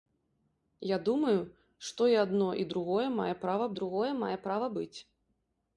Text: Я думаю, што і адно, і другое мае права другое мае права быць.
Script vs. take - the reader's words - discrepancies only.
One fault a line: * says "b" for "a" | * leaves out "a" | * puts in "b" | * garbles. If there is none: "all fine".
all fine